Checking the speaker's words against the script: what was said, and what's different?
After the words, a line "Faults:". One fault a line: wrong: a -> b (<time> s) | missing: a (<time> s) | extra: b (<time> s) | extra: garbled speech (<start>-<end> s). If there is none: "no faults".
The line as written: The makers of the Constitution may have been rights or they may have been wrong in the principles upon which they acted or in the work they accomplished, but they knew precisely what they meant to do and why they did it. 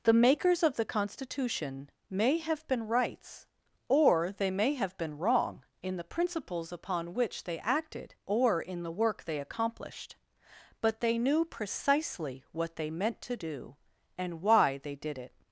The makers of the Constitution may have been rights or they may have been wrong in the principles upon which they acted or in the work they accomplished, but they knew precisely what they meant to do and why they did it.
Faults:
no faults